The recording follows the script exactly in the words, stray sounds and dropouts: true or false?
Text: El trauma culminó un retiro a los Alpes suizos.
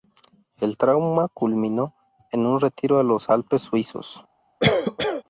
false